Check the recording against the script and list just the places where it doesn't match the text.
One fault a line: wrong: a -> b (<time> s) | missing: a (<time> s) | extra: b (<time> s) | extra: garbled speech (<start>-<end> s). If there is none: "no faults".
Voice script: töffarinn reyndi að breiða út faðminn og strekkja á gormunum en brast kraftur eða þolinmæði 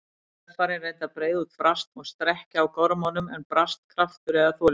wrong: faðminn -> brast (1.6 s)